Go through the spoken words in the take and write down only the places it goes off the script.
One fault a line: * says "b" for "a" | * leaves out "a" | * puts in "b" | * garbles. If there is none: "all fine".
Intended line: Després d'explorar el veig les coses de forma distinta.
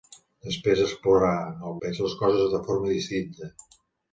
all fine